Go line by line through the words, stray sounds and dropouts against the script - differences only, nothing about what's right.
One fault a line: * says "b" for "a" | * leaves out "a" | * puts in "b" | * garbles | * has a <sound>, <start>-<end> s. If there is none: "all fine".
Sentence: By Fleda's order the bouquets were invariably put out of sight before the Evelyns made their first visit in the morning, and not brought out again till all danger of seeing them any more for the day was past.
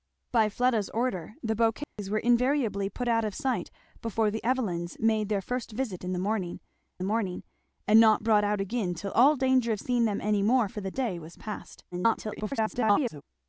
* has a dropout, 1.8-2.0 s
* puts in "morning"
* garbles